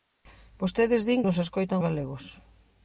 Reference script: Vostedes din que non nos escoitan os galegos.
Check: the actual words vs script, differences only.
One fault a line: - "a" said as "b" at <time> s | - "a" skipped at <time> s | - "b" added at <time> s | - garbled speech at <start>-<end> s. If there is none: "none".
- "que non" skipped at 1.2 s
- "os" skipped at 1.8 s